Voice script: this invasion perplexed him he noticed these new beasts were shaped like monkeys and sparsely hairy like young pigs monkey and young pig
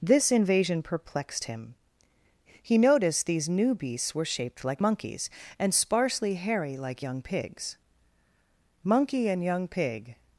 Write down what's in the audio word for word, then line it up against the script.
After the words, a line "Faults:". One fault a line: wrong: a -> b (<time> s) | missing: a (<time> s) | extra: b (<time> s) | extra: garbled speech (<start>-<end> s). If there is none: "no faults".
this invasion perplexed him he noticed these new beasts were shaped like monkeys and sparsely hairy like young pigs monkey and young pig
Faults:
no faults